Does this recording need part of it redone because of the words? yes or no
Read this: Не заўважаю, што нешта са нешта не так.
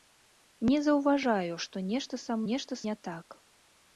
no